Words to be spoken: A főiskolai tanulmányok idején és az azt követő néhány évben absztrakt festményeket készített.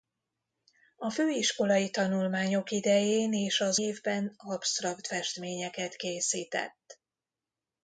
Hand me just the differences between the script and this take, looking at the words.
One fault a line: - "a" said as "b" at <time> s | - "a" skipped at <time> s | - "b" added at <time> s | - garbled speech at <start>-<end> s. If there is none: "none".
- "azt követő néhány" skipped at 3.8 s